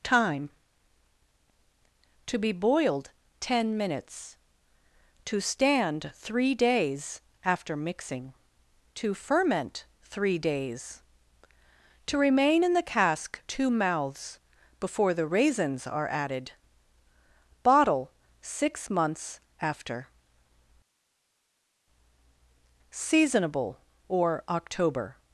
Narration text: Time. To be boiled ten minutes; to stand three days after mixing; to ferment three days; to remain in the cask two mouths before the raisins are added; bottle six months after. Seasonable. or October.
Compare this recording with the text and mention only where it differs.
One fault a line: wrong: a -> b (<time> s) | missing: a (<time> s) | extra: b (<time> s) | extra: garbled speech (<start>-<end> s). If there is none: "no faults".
no faults